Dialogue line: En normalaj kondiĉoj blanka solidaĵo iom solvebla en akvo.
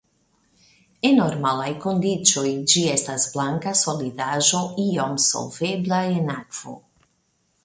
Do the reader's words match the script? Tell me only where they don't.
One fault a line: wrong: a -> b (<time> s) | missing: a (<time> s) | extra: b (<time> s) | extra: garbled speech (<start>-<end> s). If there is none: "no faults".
extra: ĝi estas (2.7 s)